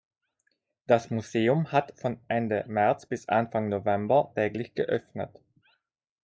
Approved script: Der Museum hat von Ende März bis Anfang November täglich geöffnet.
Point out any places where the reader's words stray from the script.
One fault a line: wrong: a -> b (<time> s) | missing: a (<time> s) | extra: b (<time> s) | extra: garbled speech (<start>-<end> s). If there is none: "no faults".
wrong: Der -> Das (0.9 s)